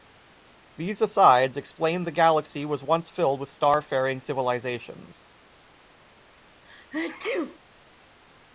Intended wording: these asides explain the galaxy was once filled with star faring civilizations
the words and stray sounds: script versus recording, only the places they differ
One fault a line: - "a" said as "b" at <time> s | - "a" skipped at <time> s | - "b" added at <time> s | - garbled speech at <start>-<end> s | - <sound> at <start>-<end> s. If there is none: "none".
- sneeze at 6.6-7.6 s